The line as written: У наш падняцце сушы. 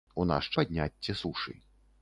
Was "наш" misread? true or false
false